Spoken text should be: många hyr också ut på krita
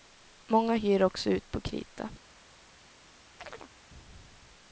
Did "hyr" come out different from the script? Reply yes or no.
no